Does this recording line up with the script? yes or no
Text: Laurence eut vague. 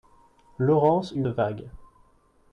yes